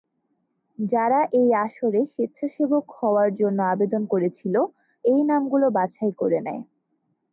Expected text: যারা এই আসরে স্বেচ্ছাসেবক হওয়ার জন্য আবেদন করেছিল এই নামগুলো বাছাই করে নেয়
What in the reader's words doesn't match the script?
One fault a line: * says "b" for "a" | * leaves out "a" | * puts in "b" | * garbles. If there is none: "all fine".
all fine